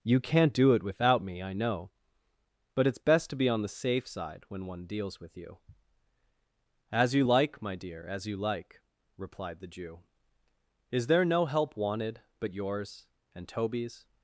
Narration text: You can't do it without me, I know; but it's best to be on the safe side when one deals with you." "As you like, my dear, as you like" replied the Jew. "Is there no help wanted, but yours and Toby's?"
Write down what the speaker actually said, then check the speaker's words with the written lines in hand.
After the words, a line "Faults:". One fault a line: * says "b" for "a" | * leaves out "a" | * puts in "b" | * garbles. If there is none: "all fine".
You can't do it without me, I know; but it's best to be on the safe side when one deals with you." "As you like, my dear, as you like" replied the Jew. "Is there no help wanted, but yours and Toby's?"
Faults:
all fine